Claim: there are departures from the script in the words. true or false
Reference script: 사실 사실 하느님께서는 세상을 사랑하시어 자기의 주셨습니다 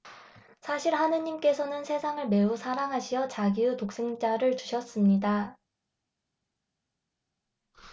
true